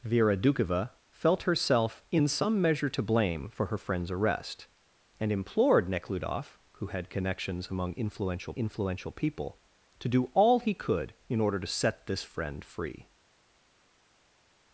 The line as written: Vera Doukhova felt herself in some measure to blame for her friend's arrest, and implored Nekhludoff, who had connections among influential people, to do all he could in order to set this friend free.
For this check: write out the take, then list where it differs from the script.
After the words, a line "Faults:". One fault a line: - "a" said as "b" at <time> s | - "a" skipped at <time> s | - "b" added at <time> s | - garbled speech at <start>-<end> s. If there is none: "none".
Vera Doukhova felt herself in some measure to blame for her friend's arrest, and implored Nekhludoff, who had connections among influential influential people, to do all he could in order to set this friend free.
Faults:
- "influential" added at 8.5 s